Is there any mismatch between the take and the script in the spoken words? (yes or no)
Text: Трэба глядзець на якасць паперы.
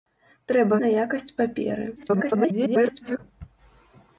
yes